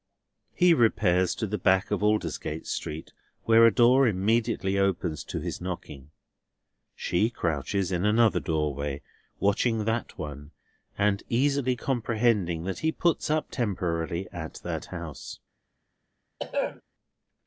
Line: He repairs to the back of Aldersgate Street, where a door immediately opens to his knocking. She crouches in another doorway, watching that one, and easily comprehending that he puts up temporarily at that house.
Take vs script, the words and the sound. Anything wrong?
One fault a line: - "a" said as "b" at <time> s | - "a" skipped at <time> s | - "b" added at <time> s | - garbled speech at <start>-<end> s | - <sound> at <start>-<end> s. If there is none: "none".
- throat clearing at 16.4-16.8 s